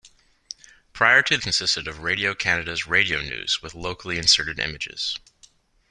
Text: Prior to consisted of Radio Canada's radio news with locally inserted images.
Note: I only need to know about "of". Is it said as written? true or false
true